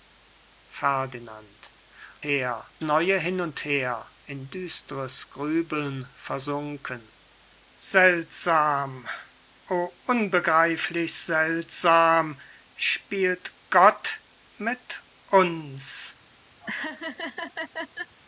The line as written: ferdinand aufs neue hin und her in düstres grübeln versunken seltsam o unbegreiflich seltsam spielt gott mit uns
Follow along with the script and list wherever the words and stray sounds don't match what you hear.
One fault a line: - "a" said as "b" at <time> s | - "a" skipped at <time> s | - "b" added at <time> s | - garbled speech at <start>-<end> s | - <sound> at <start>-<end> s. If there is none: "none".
- "aufs" said as "her" at 2.2 s
- laugh at 16.6-18.2 s